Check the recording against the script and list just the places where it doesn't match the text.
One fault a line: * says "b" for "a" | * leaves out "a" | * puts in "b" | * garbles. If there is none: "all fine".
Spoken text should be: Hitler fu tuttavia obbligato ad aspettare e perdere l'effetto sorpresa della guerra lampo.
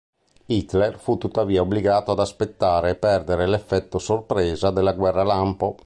all fine